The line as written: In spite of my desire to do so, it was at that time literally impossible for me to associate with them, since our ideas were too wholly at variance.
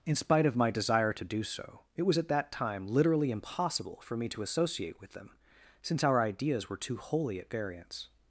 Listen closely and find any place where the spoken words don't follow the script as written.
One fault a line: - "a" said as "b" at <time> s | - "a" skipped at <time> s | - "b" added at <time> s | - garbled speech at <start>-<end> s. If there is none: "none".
none